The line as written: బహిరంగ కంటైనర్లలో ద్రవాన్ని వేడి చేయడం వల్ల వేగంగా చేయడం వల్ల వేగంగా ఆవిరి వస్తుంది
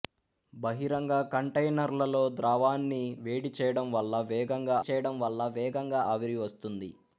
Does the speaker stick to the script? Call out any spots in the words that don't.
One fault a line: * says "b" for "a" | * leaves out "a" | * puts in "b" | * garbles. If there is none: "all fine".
all fine